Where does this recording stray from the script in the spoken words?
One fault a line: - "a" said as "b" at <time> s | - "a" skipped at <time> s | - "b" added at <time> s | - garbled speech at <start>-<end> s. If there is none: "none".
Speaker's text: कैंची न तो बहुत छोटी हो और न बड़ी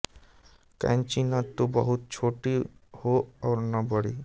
none